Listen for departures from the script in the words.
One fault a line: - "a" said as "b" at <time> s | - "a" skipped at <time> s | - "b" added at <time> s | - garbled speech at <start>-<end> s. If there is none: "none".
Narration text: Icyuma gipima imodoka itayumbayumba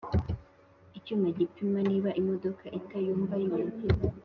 - "niba" added at 1.9 s